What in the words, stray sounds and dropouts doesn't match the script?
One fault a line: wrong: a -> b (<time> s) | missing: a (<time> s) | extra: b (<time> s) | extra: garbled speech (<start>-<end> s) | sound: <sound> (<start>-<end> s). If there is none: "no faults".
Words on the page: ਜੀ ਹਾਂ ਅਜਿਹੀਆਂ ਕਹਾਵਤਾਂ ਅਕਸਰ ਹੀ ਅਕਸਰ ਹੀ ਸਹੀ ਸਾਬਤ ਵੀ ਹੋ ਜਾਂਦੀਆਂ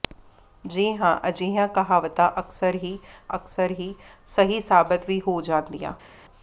no faults